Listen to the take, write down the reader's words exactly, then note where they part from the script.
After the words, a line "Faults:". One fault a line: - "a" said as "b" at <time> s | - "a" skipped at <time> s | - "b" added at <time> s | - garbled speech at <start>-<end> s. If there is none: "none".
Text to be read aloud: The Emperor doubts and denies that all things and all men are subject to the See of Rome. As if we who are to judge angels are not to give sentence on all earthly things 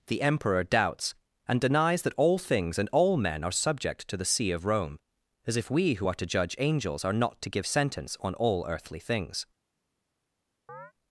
The Emperor doubts and denies that all things and all men are subject to the See of Rome. As if we who are to judge angels are not to give sentence on all earthly things
Faults:
none